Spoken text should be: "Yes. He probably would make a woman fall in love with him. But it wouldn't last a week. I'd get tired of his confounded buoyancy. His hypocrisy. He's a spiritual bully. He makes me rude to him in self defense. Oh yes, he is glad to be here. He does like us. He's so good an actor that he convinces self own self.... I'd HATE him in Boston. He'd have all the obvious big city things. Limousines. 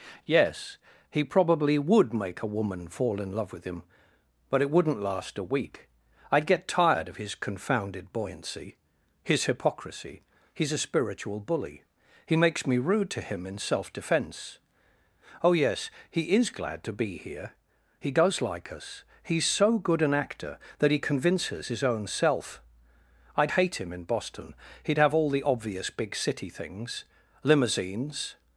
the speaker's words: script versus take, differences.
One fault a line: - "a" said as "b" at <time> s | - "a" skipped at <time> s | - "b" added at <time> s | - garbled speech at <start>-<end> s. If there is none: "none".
- "self" said as "his" at 21.7 s